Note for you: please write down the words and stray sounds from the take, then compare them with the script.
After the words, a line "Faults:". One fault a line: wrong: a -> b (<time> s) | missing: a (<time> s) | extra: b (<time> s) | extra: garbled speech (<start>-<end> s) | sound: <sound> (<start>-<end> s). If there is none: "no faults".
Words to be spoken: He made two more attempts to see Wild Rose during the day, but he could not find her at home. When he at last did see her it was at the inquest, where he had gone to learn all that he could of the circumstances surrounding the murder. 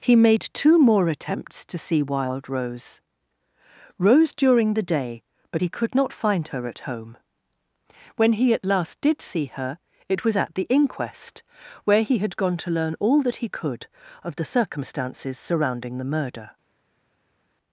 He made two more attempts to see Wild Rose Rose during the day, but he could not find her at home. When he at last did see her it was at the inquest, where he had gone to learn all that he could of the circumstances surrounding the murder.
Faults:
extra: Rose (4.0 s)